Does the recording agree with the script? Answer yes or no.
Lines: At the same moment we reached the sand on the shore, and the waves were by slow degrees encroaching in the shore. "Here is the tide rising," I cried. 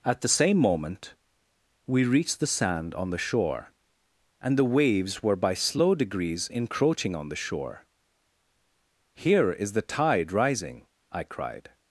no